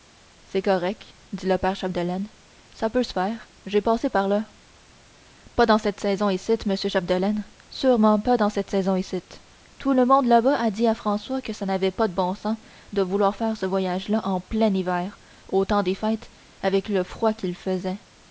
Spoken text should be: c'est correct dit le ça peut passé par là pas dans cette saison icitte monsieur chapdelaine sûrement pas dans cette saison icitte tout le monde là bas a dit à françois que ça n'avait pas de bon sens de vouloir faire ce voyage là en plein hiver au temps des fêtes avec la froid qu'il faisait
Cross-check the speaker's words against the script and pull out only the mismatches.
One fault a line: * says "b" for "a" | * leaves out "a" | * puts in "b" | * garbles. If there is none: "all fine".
* puts in "père chapdelaine"
* puts in "se faire j'ai"
* says "le" for "la"